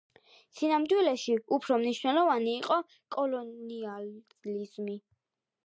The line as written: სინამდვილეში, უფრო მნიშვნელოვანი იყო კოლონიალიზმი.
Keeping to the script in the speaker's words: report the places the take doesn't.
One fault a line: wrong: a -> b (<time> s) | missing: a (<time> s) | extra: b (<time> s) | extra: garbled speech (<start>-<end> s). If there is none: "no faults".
no faults